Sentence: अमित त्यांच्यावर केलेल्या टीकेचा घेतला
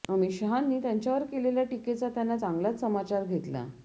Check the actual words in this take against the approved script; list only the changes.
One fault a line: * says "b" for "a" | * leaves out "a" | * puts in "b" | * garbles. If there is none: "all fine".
* puts in "शहांनी"
* puts in "त्यांना चांगलाच समाचार"